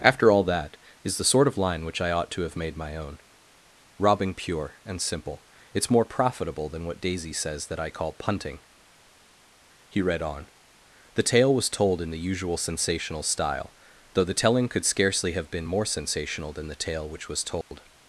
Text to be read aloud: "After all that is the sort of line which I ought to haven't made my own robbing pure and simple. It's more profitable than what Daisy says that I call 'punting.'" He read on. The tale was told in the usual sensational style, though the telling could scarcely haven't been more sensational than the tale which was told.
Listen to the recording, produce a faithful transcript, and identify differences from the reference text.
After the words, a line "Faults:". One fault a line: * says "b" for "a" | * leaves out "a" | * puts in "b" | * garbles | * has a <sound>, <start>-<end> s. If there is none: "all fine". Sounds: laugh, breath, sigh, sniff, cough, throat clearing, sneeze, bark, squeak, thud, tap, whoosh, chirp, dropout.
"After all that is the sort of line which I ought to have made my own robbing pure and simple. It's more profitable than what Daisy says that I call 'punting.'" He read on. The tale was told in the usual sensational style, though the telling could scarcely have been more sensational than the tale which was told.
Faults:
* says "have" for "haven't"
* says "have" for "haven't"
* has a dropout, 17.6-17.7 s